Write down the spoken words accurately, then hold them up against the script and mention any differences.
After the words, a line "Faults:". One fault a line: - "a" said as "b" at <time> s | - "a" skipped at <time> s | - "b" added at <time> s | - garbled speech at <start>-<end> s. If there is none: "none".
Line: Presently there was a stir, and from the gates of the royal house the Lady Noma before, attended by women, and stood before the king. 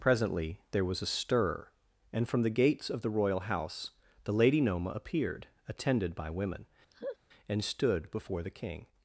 Presently there was a stir, and from the gates of the royal house the Lady Noma appeared, attended by women, and stood before the king.
Faults:
- "before" said as "appeared" at 4.9 s